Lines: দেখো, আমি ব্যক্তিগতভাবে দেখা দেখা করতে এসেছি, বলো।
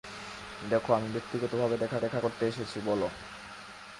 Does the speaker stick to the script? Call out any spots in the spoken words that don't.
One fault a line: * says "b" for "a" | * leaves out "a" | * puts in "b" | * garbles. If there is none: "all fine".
all fine